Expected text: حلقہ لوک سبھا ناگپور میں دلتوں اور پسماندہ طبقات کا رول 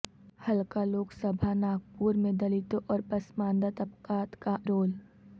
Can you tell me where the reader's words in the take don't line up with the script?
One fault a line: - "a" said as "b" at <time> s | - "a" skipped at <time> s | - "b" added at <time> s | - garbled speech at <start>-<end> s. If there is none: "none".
none